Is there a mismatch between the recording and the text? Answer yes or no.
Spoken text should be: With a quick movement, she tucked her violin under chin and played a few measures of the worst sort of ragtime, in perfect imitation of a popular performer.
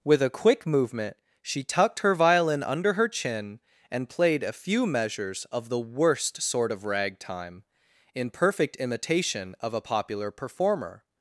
yes